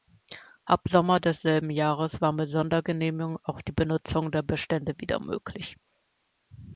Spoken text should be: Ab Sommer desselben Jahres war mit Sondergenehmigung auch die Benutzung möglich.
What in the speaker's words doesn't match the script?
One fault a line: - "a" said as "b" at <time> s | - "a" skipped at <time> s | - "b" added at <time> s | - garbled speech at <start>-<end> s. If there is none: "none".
- "der Bestände wieder" added at 4.3 s